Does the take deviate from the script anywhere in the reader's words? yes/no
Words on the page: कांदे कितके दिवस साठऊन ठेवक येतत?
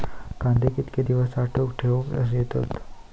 no